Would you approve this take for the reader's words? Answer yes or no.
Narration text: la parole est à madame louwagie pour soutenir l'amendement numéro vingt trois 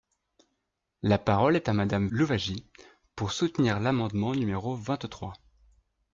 yes